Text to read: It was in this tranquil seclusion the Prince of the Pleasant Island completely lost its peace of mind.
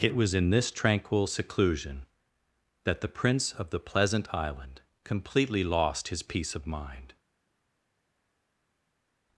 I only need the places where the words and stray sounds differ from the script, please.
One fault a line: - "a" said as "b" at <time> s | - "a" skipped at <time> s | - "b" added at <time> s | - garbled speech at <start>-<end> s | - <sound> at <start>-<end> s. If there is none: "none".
- "that" added at 2.9 s
- "its" said as "his" at 6.1 s